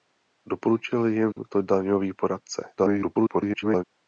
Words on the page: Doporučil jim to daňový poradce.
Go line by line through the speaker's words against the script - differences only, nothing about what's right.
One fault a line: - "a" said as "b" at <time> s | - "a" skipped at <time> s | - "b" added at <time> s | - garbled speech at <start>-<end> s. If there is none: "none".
- garbled speech at 2.8-3.8 s